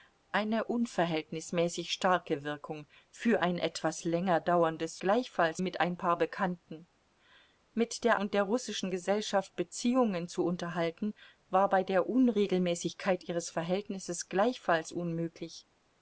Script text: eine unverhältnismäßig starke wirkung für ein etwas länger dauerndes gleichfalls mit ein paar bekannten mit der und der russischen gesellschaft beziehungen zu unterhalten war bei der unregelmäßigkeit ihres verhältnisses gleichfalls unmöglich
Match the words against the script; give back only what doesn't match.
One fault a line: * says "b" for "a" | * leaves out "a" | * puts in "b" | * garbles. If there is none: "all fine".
all fine